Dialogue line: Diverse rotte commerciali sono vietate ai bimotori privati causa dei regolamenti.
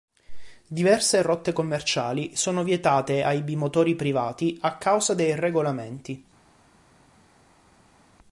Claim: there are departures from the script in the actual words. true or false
true